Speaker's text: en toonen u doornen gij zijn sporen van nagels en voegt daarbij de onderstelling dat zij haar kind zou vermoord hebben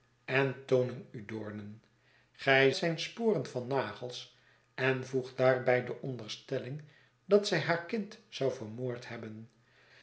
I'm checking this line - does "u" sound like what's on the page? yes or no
yes